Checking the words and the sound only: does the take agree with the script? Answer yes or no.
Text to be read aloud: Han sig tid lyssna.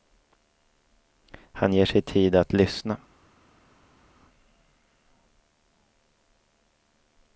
no